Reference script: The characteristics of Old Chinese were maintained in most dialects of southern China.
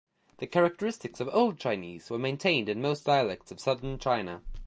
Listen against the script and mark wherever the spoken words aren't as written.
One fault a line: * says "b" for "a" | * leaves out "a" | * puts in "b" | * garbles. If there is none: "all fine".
all fine